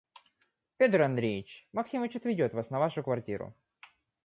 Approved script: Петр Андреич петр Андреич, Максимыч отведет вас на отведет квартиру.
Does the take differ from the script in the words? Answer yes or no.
yes